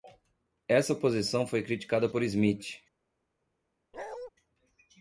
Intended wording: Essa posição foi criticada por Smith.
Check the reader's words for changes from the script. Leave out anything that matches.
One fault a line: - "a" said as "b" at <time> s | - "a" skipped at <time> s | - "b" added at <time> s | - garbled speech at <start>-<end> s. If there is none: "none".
none